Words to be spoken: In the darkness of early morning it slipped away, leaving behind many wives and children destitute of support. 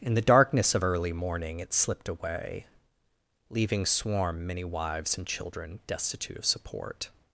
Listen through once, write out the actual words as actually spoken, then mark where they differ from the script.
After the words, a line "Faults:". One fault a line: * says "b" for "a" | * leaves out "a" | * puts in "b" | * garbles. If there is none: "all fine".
In the darkness of early morning it slipped away, leaving swarm many wives and children destitute of support.
Faults:
* says "swarm" for "behind"